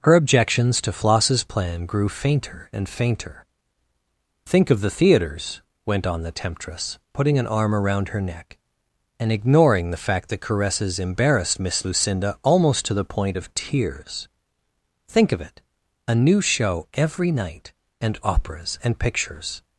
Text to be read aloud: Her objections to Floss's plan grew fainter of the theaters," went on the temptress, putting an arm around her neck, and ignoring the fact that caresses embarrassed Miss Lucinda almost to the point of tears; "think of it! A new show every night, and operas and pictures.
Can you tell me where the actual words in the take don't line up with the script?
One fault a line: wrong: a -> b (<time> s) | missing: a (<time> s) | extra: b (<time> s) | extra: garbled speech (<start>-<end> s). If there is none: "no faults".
extra: and fainter Think (2.7 s)